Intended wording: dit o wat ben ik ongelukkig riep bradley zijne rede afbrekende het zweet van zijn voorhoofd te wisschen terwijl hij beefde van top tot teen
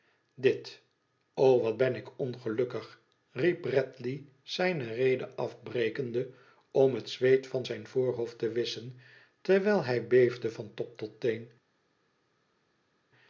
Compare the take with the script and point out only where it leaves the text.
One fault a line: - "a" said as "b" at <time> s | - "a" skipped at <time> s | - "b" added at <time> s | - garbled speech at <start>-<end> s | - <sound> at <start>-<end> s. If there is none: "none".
- "om" added at 6.7 s